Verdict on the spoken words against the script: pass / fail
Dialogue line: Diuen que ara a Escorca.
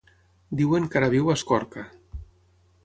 fail